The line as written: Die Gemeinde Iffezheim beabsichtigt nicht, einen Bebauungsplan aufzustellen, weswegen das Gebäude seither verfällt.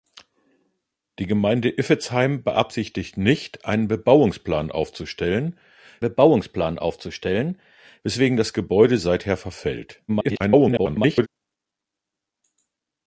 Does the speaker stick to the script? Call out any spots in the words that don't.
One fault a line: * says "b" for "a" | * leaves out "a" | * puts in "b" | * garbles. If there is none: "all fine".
* puts in "Bebauungsplan aufzustellen"
* garbles